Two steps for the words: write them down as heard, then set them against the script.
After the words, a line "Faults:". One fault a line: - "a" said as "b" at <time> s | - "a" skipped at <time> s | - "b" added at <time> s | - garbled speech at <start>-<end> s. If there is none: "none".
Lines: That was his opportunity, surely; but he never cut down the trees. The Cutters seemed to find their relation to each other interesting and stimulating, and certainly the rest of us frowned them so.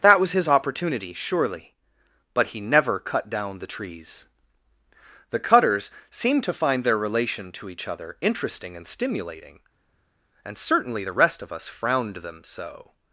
That was his opportunity, surely; but he never cut down the trees. The Cutters seemed to find their relation to each other interesting and stimulating, and certainly the rest of us frowned them so.
Faults:
none